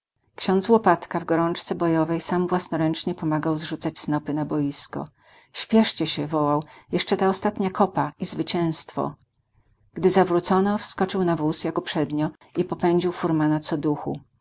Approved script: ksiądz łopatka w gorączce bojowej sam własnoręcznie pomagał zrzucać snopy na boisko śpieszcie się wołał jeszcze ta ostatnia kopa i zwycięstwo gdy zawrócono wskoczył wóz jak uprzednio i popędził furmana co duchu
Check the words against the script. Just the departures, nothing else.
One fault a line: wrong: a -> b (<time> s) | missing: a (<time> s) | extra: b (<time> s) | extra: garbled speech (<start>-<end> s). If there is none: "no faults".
extra: na (11.2 s)